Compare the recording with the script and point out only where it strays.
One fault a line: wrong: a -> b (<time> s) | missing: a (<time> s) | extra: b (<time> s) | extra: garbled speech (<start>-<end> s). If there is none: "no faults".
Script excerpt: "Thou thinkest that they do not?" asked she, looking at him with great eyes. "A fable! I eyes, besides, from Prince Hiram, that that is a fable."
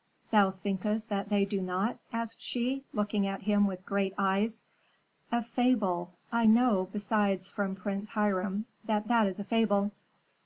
wrong: eyes -> know (6.5 s)